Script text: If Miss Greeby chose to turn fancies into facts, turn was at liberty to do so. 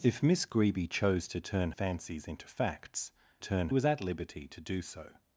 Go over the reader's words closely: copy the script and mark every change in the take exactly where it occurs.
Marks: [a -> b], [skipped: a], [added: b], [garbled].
If Miss Greeby chose to turn fancies into facts, turn was at liberty to do so.